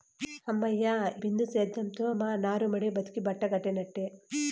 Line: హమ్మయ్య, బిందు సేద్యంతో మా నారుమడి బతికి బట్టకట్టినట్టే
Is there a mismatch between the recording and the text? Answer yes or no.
no